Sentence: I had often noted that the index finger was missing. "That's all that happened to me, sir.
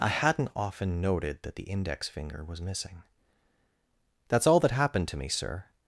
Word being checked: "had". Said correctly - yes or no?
no